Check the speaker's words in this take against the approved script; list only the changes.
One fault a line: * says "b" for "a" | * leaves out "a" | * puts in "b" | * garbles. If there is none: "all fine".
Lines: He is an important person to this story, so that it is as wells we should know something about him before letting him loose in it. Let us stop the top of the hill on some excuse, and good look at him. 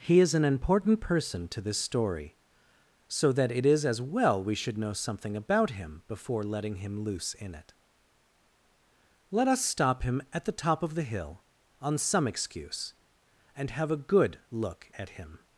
* says "well" for "wells"
* puts in "him at"
* puts in "have a"